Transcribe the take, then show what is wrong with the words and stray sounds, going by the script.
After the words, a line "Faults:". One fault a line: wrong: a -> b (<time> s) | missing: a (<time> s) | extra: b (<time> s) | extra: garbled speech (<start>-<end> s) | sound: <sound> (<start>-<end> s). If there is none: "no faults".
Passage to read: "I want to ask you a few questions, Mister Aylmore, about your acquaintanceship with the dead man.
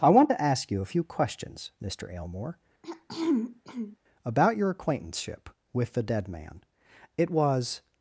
"I want to ask you a few questions, Mister Aylmore, about your acquaintanceship with the dead man. It was
Faults:
sound: throat clearing (2.8-4.0 s)
extra: It was (7.2 s)